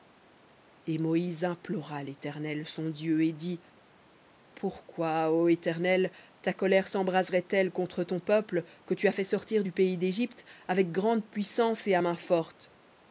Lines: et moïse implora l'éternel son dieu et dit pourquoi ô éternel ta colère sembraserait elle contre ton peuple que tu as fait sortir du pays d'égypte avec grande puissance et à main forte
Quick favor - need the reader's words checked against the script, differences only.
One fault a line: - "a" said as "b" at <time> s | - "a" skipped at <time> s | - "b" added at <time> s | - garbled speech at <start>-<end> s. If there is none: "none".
none